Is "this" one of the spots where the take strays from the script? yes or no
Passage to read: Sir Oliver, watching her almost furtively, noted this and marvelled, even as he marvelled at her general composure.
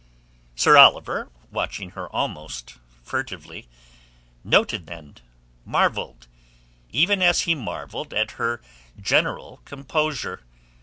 yes